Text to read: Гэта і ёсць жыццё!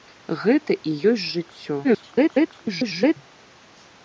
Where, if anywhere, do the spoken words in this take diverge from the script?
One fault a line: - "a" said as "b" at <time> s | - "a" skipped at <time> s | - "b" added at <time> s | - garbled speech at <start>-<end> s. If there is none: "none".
- garbled speech at 1.8-3.2 s